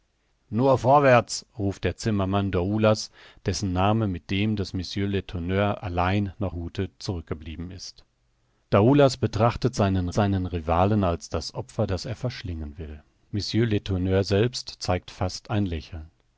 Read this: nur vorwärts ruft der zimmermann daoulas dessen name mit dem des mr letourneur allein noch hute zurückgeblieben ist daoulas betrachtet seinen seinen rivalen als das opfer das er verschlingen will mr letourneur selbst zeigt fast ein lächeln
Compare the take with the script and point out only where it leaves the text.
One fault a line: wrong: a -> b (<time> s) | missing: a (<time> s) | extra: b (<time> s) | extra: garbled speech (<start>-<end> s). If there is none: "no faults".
no faults